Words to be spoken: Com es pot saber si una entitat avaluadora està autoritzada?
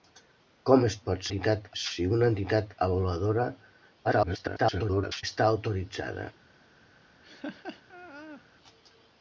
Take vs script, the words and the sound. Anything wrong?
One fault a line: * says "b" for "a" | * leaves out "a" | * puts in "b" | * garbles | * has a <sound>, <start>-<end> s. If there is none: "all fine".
* says "entitat" for "saber"
* garbles
* has a laugh, 7.2-8.4 s